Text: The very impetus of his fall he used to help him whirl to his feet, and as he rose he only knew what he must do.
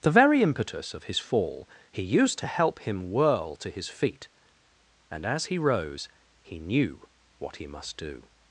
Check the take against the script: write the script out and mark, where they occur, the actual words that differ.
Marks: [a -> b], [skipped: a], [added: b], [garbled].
The very impetus of his fall he used to help him whirl to his feet, and as he rose he [skipped: only] knew what he must do.